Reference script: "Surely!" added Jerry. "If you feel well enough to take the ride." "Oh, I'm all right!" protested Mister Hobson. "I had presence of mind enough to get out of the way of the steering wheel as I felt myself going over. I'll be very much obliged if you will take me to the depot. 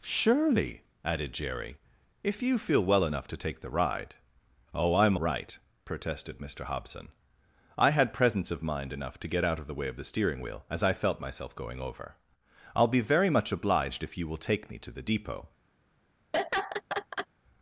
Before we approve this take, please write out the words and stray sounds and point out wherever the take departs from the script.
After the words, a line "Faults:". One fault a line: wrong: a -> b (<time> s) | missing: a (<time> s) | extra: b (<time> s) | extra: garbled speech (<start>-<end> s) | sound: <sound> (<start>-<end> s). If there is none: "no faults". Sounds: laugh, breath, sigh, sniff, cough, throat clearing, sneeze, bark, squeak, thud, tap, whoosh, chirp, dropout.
"Surely!" added Jerry. "If you feel well enough to take the ride." "Oh, I'm right!" protested Mister Hobson. "I had presence of mind enough to get out of the way of the steering wheel as I felt myself going over. I'll be very much obliged if you will take me to the depot.
Faults:
missing: all (5.2 s)
sound: laugh (16.3-17.3 s)